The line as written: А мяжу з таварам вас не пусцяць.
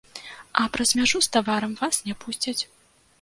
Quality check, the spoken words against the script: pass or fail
fail